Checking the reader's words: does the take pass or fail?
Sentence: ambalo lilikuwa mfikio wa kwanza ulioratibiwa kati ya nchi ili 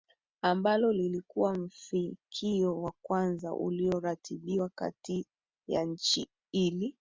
pass